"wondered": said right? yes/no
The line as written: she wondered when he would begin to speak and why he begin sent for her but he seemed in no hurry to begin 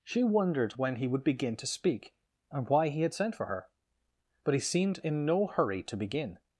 yes